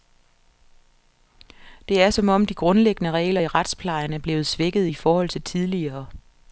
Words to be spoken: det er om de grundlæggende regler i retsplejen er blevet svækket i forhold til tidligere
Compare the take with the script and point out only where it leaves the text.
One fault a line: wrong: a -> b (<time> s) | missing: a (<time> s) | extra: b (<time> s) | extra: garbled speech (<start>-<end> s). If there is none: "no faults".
extra: som (2.1 s)